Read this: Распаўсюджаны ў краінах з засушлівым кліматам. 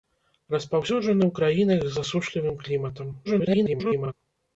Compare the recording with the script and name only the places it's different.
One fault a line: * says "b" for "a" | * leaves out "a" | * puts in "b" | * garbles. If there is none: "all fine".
* garbles